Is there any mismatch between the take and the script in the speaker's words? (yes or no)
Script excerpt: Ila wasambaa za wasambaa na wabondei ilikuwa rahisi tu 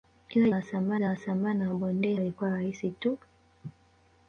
no